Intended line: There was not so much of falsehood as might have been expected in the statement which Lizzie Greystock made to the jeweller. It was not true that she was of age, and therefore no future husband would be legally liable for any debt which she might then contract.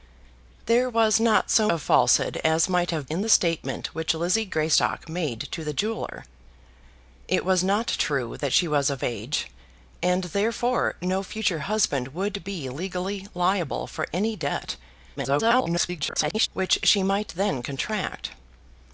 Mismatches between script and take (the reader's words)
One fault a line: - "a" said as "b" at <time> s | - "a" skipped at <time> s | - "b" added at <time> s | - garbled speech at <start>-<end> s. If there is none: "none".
- "much" skipped at 1.7 s
- "been expected" skipped at 3.1 s
- garbled speech at 15.2-16.5 s